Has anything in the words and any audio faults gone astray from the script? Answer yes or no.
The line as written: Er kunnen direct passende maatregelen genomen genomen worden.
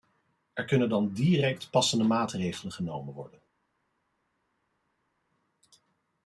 yes